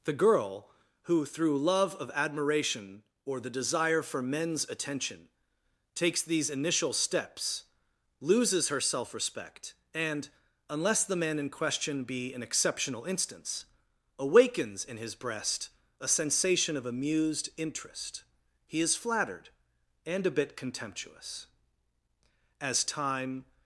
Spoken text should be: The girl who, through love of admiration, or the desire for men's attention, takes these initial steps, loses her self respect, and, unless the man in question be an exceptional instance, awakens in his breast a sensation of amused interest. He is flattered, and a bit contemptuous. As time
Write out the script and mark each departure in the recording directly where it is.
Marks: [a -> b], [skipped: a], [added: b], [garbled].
The girl who, through love of admiration, or the desire for men's attention, takes these initial steps, loses her self respect, and, unless the man in question be an exceptional instance, awakens in his breast a sensation of amused interest. He is flattered, and a bit contemptuous. As time